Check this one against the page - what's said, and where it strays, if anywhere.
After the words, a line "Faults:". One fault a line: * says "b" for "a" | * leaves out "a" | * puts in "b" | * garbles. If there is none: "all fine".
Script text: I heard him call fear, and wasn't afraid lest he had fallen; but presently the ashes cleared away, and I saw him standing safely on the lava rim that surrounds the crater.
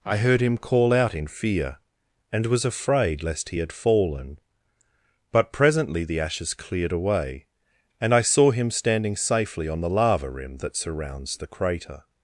I heard him call out in fear, and was afraid lest he had fallen; but presently the ashes cleared away, and I saw him standing safely on the lava rim that surrounds the crater.
Faults:
* puts in "out in"
* says "was" for "wasn't"